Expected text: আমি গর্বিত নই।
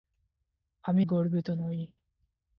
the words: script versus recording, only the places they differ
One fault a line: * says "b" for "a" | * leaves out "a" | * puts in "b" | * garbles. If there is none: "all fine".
all fine